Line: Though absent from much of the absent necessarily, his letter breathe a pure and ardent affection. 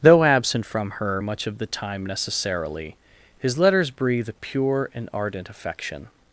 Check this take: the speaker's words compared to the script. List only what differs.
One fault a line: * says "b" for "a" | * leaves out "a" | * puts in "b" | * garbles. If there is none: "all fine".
* puts in "her"
* says "time" for "absent"
* says "letters" for "letter"